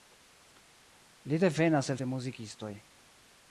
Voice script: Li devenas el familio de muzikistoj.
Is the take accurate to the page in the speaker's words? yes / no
no